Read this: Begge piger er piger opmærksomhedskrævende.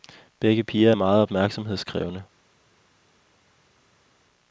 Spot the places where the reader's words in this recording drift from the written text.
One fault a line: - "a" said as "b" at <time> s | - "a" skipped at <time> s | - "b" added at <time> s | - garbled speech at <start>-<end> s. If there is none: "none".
- "piger" said as "meget" at 0.9 s